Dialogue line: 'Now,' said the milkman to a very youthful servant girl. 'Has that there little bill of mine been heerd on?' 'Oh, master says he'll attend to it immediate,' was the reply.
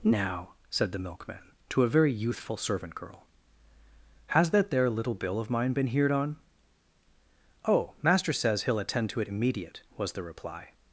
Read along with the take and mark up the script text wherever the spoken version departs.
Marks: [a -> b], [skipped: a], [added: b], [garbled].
'Now,' said the milkman to a very youthful servant girl. 'Has that there little bill of mine been heerd on?' 'Oh, master says he'll attend to it immediate,' was the reply.